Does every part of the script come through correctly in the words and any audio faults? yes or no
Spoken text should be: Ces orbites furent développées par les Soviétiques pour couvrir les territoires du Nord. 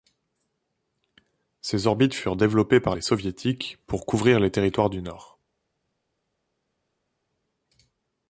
yes